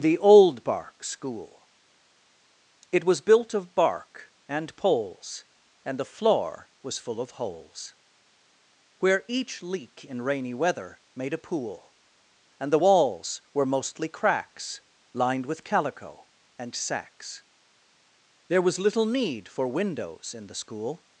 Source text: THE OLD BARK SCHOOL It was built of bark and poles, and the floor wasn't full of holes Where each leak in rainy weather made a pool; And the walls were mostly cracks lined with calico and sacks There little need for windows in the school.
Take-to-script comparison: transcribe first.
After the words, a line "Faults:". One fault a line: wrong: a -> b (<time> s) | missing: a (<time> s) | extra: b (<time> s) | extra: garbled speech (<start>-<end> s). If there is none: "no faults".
THE OLD BARK SCHOOL It was built of bark and poles, and the floor was full of holes Where each leak in rainy weather made a pool; And the walls were mostly cracks lined with calico and sacks There was little need for windows in the school.
Faults:
wrong: wasn't -> was (6.8 s)
extra: was (18.6 s)